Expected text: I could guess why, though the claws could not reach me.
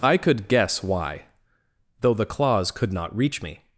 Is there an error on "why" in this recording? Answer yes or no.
no